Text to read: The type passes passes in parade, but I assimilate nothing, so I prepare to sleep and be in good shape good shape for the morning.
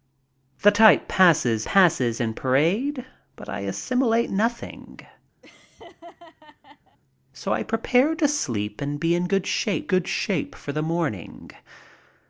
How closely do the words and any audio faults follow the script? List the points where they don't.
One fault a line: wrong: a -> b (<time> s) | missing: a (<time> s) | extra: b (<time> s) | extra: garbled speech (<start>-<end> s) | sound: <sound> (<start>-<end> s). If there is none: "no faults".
sound: laugh (5.4-7.0 s)